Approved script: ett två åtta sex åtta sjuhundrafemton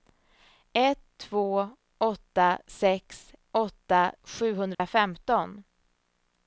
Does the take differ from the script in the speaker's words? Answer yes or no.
no